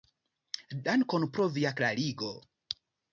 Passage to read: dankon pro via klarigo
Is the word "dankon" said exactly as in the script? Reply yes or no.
yes